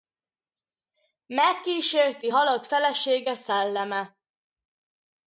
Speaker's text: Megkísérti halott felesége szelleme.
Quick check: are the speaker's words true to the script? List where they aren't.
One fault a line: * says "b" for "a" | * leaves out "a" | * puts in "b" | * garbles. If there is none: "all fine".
all fine